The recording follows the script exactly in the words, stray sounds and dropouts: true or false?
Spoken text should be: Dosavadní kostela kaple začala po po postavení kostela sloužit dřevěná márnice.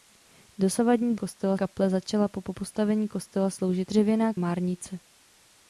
true